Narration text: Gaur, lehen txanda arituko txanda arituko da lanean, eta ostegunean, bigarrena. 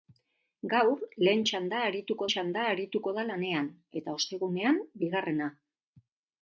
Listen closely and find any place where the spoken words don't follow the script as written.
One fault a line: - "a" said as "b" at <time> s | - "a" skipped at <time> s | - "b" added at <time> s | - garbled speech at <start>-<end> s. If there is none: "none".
none